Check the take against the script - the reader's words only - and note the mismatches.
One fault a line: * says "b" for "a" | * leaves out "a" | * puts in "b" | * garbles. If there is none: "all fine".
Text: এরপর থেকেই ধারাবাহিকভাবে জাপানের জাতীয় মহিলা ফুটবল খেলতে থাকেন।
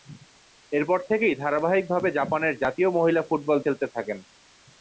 all fine